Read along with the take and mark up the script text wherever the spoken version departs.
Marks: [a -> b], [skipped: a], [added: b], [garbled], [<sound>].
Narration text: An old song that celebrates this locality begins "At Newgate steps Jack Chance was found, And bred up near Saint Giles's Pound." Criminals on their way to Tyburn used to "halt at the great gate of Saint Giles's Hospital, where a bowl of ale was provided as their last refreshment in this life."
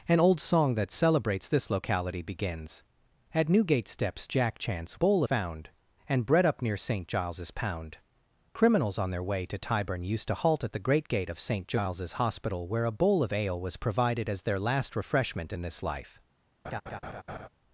An old song that celebrates this locality begins "At Newgate steps Jack Chance [was -> bowl] found, And bred up near Saint Giles's Pound." Criminals on their way to Tyburn used to "halt at the great gate of Saint Giles's Hospital, where a bowl of ale was provided as their last refreshment in this life." [laugh]